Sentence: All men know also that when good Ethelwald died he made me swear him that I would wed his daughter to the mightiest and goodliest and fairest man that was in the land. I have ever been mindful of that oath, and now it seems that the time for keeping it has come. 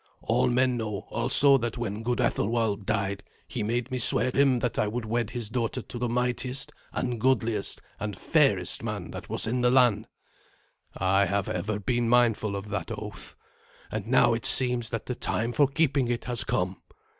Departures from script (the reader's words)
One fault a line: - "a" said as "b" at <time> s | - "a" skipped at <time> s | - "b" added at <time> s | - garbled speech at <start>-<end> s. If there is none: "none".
none